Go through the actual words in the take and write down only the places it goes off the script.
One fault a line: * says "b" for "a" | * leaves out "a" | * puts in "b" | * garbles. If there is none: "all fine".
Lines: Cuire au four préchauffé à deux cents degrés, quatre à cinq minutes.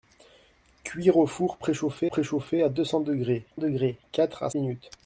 * puts in "préchauffé"
* puts in "degrés"
* leaves out "cinq"